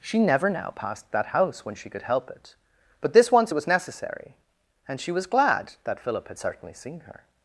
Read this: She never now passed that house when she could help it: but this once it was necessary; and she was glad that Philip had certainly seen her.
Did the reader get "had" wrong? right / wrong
right